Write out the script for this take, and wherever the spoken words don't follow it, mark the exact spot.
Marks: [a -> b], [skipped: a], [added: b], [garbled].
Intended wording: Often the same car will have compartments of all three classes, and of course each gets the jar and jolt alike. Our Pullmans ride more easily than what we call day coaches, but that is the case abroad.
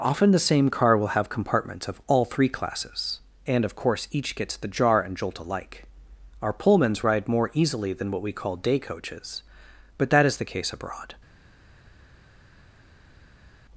Often the same car will have compartments of all three classes, and of course each gets the jar and jolt alike. Our Pullmans ride more easily than what we call day coaches, but that is the case abroad.